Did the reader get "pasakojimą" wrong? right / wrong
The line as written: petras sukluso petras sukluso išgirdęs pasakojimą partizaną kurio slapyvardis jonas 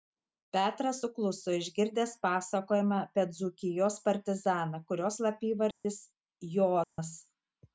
wrong